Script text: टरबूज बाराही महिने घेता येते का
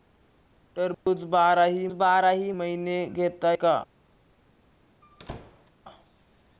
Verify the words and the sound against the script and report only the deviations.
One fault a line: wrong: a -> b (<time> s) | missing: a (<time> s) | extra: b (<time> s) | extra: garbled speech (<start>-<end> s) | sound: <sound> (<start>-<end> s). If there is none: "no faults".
sound: dropout (0.9-1.1 s)
extra: बाराही (1.9 s)
missing: येते (3.5 s)
sound: squeak (5.0-5.7 s)